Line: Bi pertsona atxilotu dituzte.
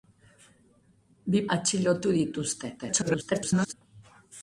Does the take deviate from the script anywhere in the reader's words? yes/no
yes